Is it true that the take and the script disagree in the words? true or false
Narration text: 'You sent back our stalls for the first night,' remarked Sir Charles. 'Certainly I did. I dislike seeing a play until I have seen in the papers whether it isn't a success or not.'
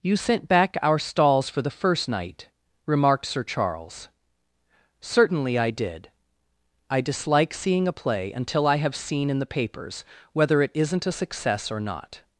false